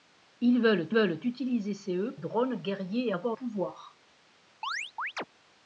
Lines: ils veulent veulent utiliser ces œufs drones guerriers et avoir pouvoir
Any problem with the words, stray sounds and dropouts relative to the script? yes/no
yes